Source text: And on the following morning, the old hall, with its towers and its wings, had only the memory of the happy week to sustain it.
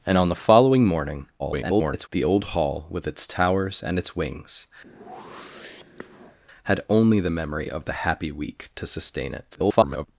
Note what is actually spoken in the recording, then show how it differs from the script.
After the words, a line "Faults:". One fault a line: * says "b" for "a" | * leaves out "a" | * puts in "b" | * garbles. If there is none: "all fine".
And on the following morning, [garbled] the old hall, with its towers and its wings, had only the memory of the happy week to sustain it. [garbled]
Faults:
* garbles
* garbles